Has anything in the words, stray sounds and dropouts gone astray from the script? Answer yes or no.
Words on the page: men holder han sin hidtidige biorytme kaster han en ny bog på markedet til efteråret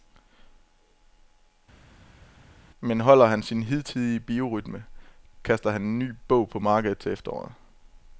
no